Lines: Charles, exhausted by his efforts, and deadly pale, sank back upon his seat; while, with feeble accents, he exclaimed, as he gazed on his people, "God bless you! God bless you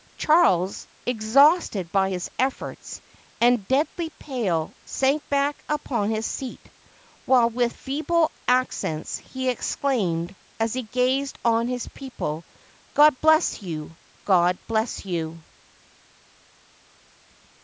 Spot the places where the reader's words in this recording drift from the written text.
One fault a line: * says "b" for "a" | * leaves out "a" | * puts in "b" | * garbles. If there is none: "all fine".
all fine